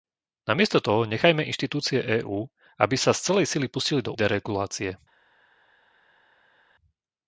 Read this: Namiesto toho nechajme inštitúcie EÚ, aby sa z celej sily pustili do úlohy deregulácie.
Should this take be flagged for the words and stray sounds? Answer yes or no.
yes